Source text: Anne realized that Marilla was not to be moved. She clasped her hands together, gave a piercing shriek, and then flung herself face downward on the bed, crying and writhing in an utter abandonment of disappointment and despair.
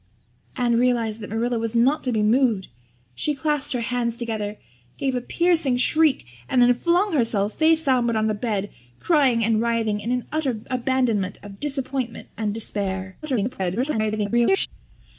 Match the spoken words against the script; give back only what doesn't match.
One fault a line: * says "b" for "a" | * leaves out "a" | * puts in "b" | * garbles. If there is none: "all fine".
* garbles